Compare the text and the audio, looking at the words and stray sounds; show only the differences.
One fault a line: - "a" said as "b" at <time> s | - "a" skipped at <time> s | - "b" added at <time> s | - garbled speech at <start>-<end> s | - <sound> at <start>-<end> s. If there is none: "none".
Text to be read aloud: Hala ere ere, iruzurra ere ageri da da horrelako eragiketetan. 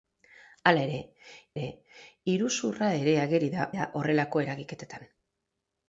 none